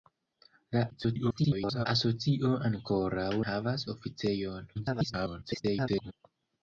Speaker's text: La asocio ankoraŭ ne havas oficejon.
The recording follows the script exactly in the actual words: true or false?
false